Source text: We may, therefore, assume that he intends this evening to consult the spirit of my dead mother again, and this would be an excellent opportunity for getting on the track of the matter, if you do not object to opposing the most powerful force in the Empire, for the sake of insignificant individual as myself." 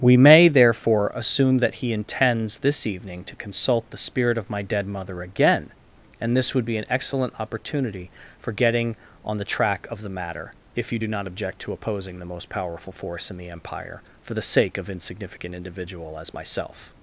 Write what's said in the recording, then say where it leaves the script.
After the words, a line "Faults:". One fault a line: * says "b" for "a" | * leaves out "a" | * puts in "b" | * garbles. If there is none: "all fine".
We may, therefore, assume that he intends this evening to consult the spirit of my dead mother again, and this would be an excellent opportunity for getting on the track of the matter, if you do not object to opposing the most powerful force in the Empire, for the sake of insignificant individual as myself."
Faults:
all fine